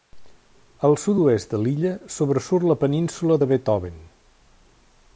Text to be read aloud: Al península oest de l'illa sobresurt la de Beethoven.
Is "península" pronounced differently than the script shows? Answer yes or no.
yes